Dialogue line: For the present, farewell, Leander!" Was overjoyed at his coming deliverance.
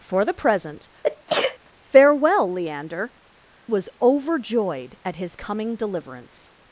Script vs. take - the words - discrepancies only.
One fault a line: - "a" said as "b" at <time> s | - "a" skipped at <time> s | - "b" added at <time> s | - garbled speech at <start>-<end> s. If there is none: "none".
none